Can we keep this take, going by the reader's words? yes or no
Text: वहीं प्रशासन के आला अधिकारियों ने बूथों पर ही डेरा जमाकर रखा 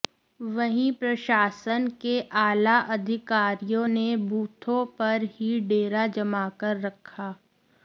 yes